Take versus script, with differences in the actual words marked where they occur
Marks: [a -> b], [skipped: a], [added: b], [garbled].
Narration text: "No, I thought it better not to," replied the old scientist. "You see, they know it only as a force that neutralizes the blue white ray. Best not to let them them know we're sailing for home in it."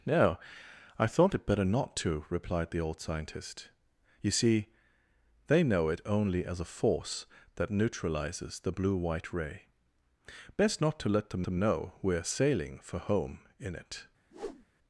"No, I thought it better not to," replied the old scientist. "You see, they know it only as a force that neutralizes the blue white ray. Best not to let them them know we're sailing for home in it."